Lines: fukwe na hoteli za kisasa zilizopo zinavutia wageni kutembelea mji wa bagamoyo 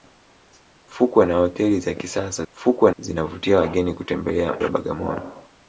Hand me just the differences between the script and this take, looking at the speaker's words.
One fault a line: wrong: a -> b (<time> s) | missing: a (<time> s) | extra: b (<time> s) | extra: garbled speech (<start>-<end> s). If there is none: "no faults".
wrong: zilizopo -> fukwe (2.5 s)
missing: mji (4.6 s)